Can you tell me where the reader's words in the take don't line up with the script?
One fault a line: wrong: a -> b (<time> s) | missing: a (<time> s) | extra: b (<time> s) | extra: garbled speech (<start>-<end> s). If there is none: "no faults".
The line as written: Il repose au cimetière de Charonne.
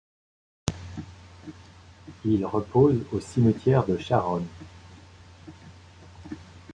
no faults